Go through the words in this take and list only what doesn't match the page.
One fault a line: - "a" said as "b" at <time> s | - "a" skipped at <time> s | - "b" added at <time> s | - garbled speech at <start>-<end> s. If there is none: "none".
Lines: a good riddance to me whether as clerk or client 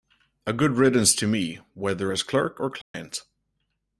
none